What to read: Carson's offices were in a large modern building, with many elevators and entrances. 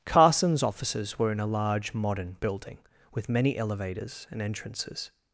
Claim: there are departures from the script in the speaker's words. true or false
false